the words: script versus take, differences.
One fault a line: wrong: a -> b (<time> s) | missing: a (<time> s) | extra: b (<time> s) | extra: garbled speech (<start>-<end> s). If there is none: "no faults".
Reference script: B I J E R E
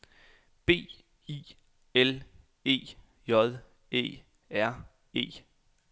extra: L E (1.9 s)